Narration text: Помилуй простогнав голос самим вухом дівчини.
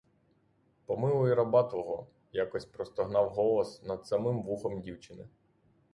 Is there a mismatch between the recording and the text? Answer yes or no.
yes